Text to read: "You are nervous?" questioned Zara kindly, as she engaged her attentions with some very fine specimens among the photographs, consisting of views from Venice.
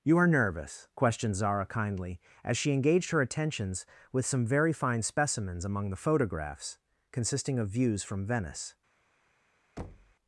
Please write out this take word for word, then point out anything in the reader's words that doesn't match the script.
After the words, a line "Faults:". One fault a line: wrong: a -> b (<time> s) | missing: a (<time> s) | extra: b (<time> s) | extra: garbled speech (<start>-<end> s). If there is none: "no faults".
"You are nervous?" questioned Zara kindly, as she engaged her attentions with some very fine specimens among the photographs, consisting of views from Venice.
Faults:
no faults